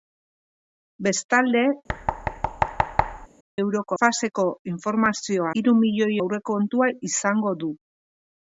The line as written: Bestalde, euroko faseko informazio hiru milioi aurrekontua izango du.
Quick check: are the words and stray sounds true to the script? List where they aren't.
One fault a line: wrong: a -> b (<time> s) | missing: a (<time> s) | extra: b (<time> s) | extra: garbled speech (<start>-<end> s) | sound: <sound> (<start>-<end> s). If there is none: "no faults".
sound: thud (1.9-3.3 s)